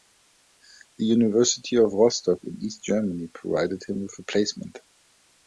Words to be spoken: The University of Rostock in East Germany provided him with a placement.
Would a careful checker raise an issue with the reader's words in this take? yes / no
no